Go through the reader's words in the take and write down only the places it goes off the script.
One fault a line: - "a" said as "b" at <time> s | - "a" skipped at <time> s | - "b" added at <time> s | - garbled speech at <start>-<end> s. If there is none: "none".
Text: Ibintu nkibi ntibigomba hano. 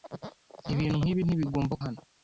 none